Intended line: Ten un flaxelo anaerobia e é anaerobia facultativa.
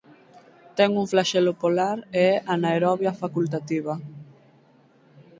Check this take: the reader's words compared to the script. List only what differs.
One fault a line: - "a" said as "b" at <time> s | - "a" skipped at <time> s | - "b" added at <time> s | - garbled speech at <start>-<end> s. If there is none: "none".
- "anaerobia" said as "polar" at 1.6 s